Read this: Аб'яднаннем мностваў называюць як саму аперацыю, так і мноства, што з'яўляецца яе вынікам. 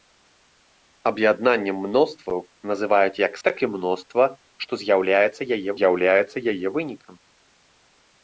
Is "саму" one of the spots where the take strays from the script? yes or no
yes